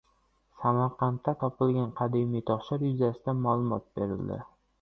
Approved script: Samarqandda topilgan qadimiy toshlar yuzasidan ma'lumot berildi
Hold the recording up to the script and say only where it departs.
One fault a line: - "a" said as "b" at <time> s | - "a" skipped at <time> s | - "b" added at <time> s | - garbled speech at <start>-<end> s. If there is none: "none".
none